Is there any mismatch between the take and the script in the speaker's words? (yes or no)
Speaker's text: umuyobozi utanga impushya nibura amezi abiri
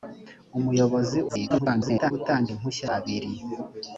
yes